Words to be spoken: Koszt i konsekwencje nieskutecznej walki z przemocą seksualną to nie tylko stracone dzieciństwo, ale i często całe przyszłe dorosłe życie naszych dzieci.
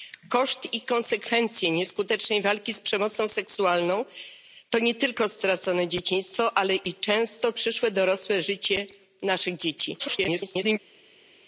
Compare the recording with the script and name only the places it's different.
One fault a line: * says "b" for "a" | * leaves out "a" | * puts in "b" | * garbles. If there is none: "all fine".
* leaves out "całe"
* garbles